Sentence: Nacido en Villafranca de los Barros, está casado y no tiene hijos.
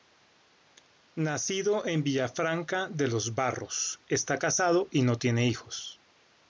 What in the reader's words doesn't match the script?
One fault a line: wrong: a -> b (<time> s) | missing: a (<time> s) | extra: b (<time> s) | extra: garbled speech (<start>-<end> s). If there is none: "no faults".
no faults